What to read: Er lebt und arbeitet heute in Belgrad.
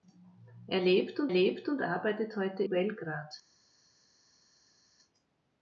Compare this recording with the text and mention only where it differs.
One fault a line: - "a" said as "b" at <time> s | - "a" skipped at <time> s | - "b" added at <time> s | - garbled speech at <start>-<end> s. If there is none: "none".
- "lebt und" added at 1.3 s
- "in" skipped at 2.6 s